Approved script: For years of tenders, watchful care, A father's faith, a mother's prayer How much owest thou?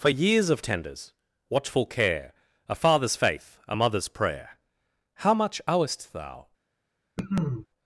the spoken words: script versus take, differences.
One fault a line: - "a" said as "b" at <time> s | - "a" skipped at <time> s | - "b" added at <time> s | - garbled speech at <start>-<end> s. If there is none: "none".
none